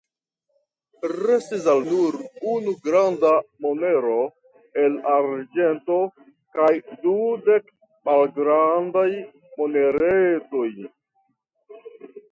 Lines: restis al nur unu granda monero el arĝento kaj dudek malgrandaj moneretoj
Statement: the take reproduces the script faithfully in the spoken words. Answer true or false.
true